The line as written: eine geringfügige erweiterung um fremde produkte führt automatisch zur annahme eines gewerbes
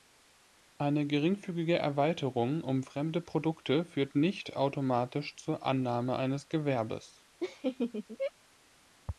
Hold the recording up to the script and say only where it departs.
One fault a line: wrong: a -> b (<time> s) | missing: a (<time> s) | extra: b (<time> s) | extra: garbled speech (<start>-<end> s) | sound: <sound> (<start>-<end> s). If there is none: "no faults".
extra: nicht (4.2 s)
sound: laugh (7.4-8.3 s)